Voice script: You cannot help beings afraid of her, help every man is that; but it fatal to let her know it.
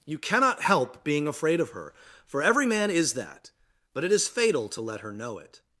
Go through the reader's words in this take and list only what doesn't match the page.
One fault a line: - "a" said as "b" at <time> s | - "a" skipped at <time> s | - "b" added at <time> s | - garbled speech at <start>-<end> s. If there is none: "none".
- "beings" said as "being" at 1.0 s
- "help" said as "for" at 2.2 s
- "is" added at 4.1 s